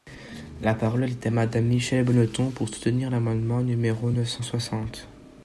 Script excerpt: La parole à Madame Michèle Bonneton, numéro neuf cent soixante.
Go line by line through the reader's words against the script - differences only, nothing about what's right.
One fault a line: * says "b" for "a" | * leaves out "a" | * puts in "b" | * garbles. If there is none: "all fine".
* puts in "est"
* puts in "pour soutenir l'amendement"